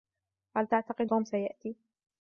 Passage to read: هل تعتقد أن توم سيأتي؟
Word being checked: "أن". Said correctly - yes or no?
no